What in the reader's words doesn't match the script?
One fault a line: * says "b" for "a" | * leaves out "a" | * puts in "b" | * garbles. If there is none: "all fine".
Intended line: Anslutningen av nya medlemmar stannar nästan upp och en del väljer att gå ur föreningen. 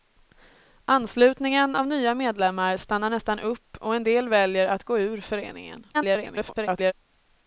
* garbles